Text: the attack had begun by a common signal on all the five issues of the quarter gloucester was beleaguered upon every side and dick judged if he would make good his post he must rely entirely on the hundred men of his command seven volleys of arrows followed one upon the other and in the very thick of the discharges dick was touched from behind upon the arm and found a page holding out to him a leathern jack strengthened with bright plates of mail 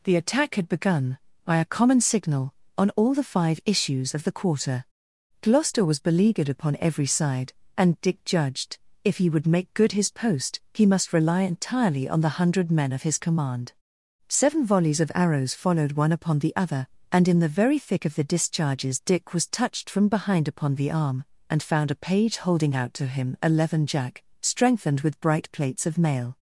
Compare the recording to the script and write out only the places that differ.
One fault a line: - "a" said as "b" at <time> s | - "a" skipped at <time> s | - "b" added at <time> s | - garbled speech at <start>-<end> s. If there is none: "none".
none